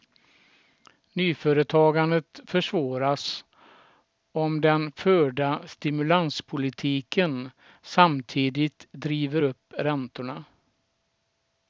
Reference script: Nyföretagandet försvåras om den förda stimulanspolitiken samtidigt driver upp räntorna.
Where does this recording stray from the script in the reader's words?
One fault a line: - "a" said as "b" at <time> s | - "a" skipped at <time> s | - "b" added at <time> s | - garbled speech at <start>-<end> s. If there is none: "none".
none